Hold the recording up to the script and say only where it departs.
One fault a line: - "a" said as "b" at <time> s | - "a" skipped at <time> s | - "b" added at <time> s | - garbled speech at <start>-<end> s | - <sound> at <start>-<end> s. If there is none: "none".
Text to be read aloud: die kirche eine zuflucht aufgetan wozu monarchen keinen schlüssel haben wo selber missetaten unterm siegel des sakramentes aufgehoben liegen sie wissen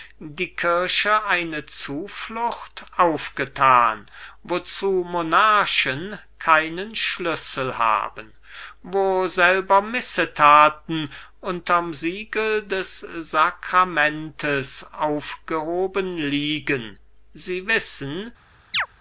- chirp at 18.7-18.9 s